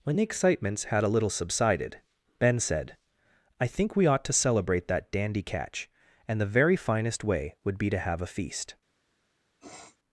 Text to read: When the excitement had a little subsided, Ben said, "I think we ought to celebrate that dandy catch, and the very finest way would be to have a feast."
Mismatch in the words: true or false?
true